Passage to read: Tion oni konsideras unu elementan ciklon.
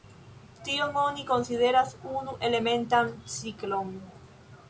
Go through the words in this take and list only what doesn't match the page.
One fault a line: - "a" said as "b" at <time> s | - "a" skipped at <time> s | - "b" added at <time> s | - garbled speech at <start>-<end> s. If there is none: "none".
none